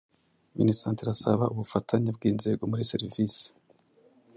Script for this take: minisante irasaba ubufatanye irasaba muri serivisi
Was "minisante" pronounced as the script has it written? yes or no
yes